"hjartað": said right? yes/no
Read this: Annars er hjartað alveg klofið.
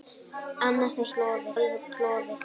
no